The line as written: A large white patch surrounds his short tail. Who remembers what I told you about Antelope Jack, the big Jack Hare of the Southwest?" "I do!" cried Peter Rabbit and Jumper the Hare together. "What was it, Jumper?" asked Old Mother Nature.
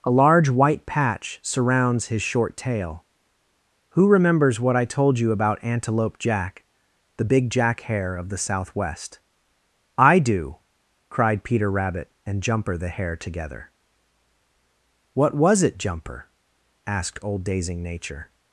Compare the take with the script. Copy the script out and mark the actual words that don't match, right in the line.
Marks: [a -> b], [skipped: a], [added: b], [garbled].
A large white patch surrounds his short tail. Who remembers what I told you about Antelope Jack, the big Jack Hare of the Southwest?" "I do!" cried Peter Rabbit and Jumper the Hare together. "What was it, Jumper?" asked Old [Mother -> Dazing] Nature.